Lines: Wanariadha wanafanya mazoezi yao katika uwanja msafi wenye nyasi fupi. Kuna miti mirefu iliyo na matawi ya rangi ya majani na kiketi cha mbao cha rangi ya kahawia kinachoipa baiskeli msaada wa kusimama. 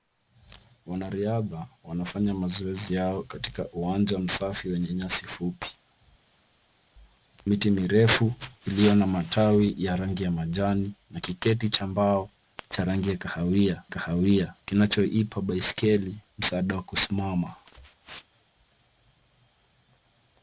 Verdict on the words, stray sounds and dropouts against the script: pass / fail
fail